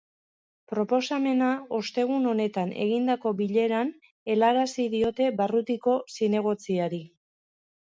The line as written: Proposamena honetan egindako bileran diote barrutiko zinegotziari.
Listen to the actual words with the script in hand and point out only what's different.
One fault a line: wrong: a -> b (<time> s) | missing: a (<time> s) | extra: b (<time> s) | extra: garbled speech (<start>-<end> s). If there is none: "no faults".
extra: ostegun (1.8 s)
extra: helarazi (4.3 s)